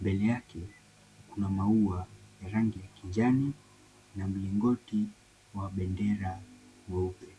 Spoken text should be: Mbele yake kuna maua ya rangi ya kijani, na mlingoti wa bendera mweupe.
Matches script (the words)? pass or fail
pass